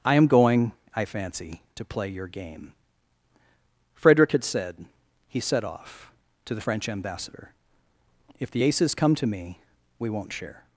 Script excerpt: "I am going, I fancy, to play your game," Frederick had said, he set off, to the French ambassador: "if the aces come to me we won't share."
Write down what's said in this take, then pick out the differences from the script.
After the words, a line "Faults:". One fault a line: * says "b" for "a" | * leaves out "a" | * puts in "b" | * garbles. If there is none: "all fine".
"I am going, I fancy, to play your game," Frederick had said, he set off, to the French ambassador: "if the aces come to me we won't share."
Faults:
all fine